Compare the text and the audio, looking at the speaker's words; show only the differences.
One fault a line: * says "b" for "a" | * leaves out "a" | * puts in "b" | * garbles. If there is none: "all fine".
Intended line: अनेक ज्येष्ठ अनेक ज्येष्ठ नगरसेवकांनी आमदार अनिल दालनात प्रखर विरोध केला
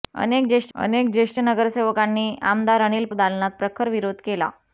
all fine